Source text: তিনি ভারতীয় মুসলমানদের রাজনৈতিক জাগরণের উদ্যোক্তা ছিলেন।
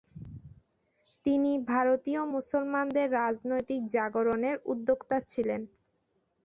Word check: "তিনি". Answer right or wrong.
right